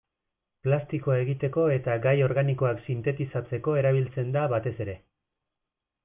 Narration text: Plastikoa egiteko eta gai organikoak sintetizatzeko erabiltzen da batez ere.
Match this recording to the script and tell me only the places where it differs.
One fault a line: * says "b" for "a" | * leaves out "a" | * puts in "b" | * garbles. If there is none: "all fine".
all fine